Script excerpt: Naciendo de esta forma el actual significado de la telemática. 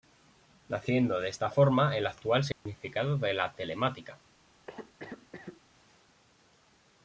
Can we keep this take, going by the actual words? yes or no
yes